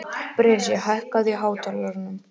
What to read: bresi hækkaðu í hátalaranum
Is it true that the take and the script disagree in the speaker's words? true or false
false